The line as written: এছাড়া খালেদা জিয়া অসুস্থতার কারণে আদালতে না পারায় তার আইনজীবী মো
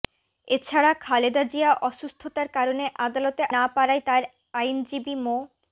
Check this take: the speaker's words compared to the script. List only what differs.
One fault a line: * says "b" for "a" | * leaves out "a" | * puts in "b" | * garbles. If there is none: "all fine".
all fine